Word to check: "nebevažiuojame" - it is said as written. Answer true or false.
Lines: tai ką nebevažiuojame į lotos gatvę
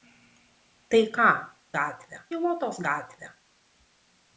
false